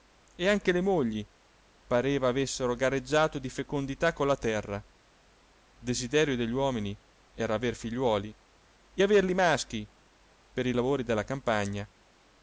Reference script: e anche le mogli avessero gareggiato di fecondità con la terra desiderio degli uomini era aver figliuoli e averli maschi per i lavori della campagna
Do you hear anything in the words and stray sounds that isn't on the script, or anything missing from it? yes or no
yes